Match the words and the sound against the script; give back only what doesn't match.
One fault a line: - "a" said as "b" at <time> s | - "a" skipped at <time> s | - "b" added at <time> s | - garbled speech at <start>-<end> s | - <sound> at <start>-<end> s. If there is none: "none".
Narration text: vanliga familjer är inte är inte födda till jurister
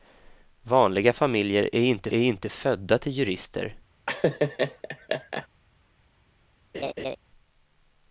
- laugh at 4.1-5.5 s
- laugh at 6.7-7.2 s